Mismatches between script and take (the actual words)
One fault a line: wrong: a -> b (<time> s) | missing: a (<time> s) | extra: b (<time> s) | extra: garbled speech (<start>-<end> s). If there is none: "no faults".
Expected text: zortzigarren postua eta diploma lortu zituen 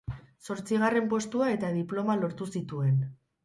no faults